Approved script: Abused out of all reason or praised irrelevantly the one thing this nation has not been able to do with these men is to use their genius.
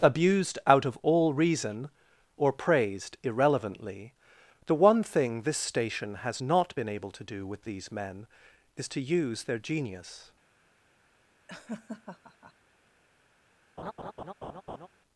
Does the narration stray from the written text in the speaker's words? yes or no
yes